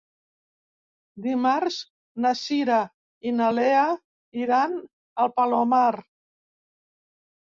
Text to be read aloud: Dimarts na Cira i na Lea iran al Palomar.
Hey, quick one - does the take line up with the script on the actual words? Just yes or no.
yes